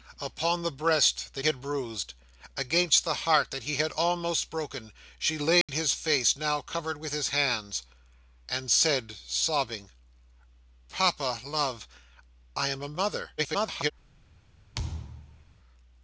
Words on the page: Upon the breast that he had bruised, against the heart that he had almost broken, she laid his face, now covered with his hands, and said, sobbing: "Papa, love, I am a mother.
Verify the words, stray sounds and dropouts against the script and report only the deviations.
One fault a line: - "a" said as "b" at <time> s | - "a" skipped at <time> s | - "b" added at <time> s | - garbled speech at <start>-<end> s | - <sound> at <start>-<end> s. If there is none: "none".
- "he" skipped at 1.4 s
- dropout at 5.6-5.7 s
- garbled speech at 13.4-13.9 s
- thud at 14.7-15.5 s